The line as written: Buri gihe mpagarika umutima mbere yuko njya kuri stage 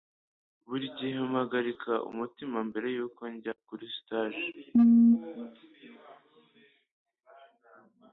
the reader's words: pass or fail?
pass